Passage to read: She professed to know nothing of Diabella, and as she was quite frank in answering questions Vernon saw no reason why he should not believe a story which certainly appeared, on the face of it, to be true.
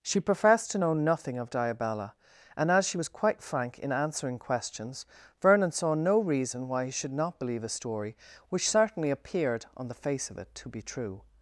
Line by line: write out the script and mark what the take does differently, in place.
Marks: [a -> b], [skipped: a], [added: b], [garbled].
She professed to know nothing of Diabella, and as she was quite frank in answering questions Vernon saw no reason why he should not believe a story which certainly appeared, on the face of it, to be true.